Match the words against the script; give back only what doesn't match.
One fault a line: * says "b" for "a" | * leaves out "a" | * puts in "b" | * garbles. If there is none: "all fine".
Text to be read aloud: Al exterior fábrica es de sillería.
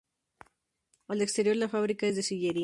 * puts in "la"